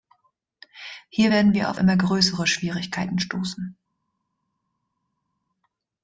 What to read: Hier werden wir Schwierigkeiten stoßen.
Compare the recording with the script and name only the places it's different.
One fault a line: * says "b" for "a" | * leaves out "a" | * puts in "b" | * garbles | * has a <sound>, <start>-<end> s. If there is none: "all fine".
* puts in "auf immer größere"